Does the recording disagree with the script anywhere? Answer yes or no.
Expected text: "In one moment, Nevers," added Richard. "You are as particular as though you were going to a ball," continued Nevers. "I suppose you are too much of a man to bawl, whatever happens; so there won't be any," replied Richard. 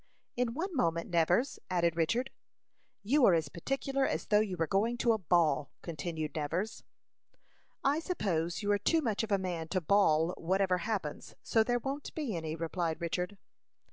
no